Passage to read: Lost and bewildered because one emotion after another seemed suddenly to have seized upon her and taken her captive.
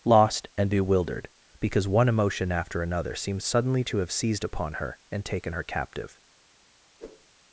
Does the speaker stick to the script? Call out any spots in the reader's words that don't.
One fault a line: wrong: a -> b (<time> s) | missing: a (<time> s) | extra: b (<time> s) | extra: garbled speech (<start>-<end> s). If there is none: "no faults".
no faults